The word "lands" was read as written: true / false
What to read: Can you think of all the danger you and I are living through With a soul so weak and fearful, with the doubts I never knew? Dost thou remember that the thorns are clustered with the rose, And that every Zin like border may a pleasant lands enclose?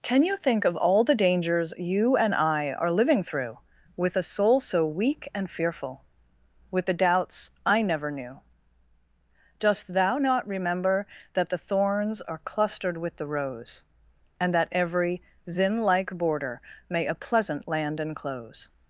false